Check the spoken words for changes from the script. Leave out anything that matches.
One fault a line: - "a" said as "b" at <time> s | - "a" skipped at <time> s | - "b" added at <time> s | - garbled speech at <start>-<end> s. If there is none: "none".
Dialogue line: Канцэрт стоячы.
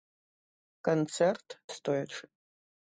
none